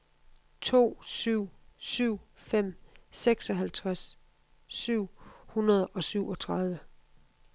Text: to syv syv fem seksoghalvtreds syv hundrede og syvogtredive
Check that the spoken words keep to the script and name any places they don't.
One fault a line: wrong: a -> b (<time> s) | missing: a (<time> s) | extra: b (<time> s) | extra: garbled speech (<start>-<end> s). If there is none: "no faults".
no faults